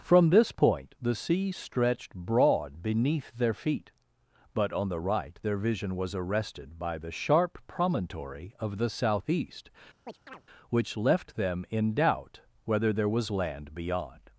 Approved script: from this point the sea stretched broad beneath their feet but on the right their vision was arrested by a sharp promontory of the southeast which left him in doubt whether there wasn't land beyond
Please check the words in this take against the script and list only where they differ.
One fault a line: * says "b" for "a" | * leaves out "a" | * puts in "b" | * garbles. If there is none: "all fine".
* says "the" for "a"
* says "them" for "him"
* says "was" for "wasn't"